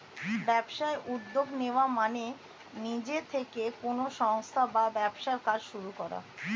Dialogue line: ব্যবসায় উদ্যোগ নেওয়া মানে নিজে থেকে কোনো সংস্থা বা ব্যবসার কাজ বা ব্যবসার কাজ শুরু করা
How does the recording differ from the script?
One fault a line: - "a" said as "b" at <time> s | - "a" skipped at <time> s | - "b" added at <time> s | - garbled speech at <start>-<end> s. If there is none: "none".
- "বা ব্যবসার কাজ" skipped at 5.6 s